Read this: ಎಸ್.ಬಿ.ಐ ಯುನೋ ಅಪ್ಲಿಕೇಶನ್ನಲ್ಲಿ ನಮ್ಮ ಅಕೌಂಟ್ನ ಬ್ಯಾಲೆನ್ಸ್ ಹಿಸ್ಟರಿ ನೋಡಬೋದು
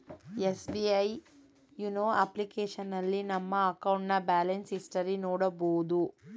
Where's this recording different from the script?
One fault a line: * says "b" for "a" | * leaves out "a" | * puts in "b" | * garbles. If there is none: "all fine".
all fine